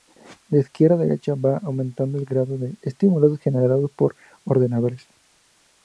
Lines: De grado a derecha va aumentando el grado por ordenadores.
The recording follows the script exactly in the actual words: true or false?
false